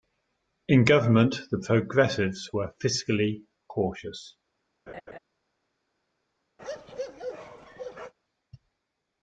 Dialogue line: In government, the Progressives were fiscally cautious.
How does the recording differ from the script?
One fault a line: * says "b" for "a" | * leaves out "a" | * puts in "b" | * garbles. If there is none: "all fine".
all fine